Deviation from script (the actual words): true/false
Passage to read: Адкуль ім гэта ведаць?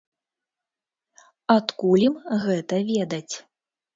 false